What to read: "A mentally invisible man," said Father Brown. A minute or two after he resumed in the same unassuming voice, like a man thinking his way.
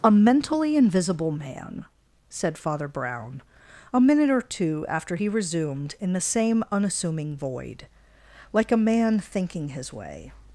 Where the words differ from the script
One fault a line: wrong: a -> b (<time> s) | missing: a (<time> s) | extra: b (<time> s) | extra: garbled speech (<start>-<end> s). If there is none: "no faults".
wrong: voice -> void (7.3 s)